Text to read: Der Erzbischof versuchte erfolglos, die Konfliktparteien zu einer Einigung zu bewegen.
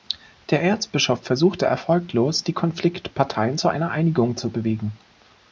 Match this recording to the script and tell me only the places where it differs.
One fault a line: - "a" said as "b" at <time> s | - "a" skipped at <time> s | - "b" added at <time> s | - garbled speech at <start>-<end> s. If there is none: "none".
none